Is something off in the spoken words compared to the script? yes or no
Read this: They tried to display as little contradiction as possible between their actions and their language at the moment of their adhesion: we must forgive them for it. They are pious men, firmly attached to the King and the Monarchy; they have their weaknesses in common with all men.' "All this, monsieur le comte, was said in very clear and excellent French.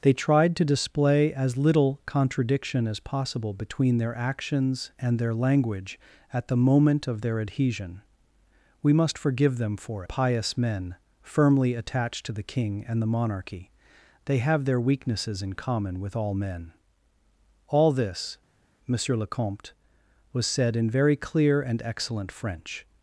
yes